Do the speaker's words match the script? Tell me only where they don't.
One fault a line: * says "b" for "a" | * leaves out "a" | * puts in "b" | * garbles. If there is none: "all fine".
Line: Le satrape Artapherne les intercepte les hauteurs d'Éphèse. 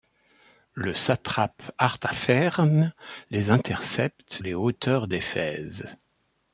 all fine